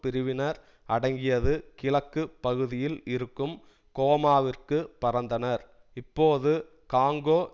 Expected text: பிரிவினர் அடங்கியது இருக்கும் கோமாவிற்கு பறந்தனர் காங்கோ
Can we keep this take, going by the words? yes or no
no